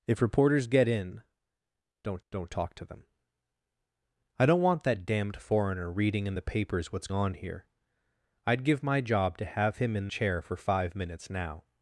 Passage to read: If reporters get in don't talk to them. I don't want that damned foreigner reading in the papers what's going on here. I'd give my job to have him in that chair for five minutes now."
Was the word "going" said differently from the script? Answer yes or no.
yes